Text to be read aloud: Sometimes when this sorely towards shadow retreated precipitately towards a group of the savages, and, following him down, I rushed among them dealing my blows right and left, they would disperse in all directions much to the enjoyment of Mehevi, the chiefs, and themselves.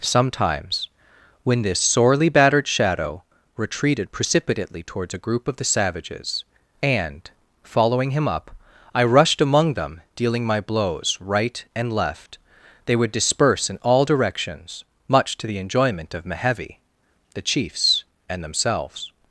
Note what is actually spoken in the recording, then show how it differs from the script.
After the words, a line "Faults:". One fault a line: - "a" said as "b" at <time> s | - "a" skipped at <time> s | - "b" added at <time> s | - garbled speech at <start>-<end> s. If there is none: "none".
Sometimes when this sorely battered shadow retreated precipitately towards a group of the savages, and, following him up, I rushed among them dealing my blows right and left, they would disperse in all directions much to the enjoyment of Mehevi, the chiefs, and themselves.
Faults:
- "towards" said as "battered" at 2.3 s
- "down" said as "up" at 8.3 s